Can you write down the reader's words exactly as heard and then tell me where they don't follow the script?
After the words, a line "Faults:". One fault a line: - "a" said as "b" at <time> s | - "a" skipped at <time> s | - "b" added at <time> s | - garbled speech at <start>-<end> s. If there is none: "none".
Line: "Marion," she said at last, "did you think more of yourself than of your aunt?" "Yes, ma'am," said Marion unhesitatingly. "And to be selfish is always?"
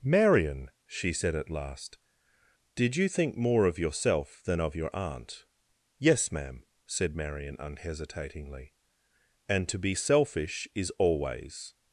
"Marion," she said at last, "did you think more of yourself than of your aunt?" "Yes, ma'am," said Marion unhesitatingly. "And to be selfish is always?"
Faults:
none